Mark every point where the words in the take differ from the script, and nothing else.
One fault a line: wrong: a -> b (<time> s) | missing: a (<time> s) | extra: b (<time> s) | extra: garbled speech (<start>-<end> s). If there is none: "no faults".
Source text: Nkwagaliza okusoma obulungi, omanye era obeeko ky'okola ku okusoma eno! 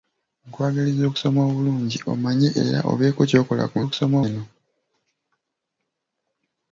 no faults